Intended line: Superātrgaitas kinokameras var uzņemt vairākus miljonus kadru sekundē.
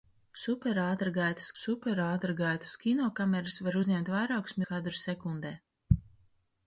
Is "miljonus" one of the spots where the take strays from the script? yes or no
yes